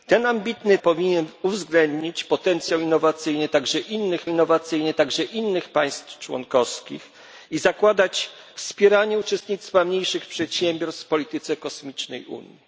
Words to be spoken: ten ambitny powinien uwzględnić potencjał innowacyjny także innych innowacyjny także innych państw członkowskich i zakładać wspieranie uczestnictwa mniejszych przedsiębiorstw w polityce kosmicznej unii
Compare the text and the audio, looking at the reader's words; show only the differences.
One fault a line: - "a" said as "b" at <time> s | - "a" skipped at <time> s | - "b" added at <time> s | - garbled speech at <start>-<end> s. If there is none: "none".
none